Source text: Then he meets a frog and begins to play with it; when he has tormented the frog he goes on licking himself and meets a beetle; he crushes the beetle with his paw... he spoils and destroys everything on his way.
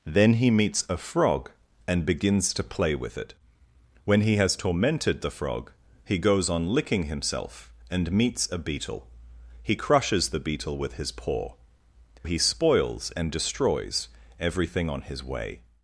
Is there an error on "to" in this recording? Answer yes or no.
no